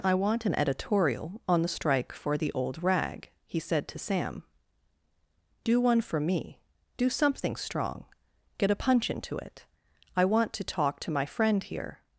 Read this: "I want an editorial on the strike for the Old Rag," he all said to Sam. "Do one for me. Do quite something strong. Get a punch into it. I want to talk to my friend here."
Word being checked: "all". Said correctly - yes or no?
no